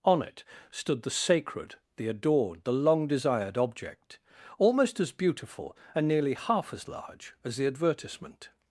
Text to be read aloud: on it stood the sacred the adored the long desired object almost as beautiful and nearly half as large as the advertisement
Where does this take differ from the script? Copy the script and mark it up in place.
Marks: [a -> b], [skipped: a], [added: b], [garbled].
on it stood the sacred the adored the long desired object almost as beautiful and nearly half as large as the advertisement